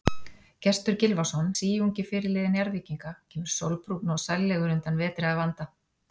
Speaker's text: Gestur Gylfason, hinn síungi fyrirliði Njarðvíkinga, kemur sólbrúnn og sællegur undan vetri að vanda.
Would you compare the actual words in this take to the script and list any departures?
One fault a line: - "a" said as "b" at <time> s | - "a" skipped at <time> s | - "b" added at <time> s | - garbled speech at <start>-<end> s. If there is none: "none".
- "hinn" skipped at 1.5 s